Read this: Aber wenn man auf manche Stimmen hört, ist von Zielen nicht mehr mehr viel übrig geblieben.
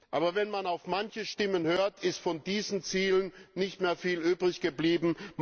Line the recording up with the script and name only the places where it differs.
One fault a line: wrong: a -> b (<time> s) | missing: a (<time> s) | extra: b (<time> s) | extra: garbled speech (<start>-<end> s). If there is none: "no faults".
extra: diesen (2.4 s)
missing: mehr (4.0 s)